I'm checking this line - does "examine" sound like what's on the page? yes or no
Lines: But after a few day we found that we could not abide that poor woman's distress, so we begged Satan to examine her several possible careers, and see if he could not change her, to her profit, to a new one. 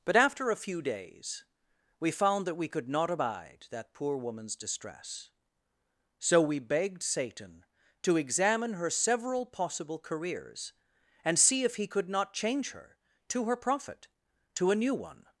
yes